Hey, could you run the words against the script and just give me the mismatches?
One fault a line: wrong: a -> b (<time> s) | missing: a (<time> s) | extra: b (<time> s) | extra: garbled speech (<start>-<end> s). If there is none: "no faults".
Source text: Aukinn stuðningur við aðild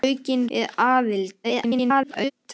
missing: stuðningur (0.5 s)
extra: garbled speech (1.4-2.3 s)